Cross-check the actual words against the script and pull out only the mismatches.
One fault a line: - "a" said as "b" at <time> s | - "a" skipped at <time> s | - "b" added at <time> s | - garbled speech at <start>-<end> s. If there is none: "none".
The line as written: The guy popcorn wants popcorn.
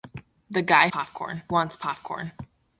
none